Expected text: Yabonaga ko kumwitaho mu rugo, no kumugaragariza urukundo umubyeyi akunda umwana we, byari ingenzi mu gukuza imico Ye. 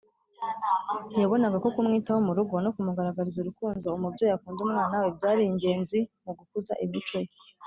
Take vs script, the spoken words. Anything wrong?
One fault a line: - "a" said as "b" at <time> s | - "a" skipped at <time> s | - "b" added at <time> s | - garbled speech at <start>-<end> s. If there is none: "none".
none